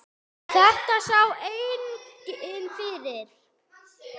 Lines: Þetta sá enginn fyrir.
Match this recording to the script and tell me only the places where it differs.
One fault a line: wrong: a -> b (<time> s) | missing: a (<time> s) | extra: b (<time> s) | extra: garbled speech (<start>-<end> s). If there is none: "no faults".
no faults